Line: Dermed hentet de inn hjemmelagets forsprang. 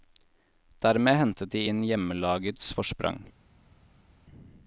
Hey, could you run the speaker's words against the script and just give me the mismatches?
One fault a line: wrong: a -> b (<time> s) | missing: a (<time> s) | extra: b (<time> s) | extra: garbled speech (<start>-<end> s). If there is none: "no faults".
no faults